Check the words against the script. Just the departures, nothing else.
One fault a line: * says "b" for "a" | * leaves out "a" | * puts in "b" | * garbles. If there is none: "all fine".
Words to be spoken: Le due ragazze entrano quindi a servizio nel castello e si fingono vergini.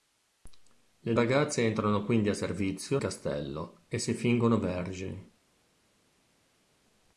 * leaves out "due"
* leaves out "nel"